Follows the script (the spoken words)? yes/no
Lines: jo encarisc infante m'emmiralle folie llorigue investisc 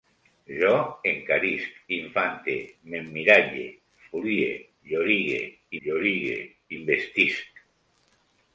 no